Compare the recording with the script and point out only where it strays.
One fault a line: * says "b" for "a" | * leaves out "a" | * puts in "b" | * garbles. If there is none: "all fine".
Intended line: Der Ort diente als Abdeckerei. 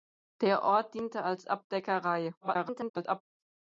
* garbles